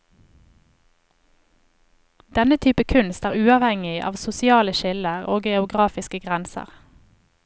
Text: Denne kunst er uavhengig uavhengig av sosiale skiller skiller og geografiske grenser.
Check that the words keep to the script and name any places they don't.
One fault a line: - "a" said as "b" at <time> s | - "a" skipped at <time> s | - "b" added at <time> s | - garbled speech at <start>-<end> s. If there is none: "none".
- "type" added at 2.6 s
- "uavhengig" skipped at 4.0 s
- "skiller" skipped at 5.3 s